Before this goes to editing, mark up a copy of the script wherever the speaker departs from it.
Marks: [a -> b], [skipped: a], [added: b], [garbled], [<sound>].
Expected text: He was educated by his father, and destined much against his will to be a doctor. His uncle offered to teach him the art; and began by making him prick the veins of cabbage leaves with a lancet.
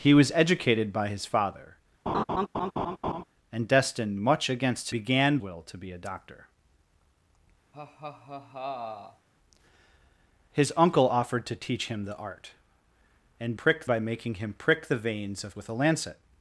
He was educated by his father, [laugh] and destined much against [his -> began] will to be a doctor. [laugh] His uncle offered to teach him the art; and [began -> prick] by making him prick the veins of [skipped: cabbage leaves] with a lancet.